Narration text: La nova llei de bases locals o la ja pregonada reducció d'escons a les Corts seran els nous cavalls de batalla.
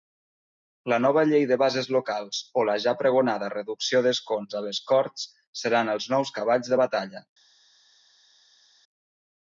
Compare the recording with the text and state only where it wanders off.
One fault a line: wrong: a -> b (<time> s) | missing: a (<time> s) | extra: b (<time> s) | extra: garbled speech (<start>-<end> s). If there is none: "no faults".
no faults